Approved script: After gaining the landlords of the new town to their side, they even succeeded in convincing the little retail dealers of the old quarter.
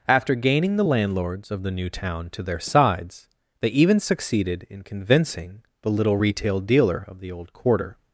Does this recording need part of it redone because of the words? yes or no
yes